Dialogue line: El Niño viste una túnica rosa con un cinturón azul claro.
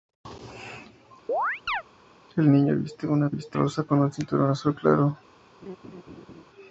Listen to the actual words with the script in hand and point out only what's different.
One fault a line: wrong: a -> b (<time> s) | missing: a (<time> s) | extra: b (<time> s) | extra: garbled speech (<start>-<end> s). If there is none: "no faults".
wrong: túnica -> viste (3.3 s)